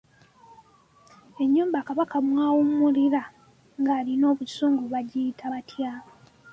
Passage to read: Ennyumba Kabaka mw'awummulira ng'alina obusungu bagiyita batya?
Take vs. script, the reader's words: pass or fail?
pass